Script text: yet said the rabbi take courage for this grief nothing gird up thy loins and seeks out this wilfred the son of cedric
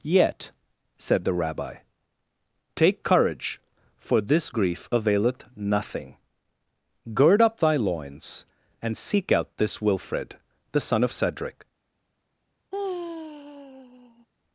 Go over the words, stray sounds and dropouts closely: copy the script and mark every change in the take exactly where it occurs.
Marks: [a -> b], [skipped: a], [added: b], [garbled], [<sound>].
yet said the rabbi take courage for this grief [added: availeth] nothing gird up thy loins and [seeks -> seek] out this wilfred the son of cedric [sigh]